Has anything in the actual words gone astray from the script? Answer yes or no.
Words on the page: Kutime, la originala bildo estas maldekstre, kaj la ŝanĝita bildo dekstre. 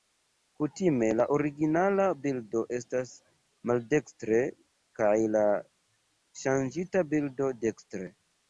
no